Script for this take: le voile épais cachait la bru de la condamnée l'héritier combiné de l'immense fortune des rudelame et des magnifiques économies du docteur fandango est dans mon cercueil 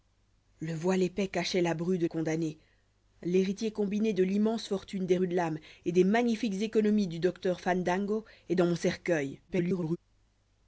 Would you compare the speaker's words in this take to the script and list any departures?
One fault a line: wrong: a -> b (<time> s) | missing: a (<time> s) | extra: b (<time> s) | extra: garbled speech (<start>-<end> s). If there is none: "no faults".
missing: la (2.1 s)
extra: garbled speech (9.5-10.0 s)